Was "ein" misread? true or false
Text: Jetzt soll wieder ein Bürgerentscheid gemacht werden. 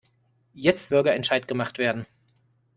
true